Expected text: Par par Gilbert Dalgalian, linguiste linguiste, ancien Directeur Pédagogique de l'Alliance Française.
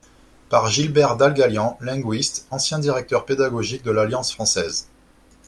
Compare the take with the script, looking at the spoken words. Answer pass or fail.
fail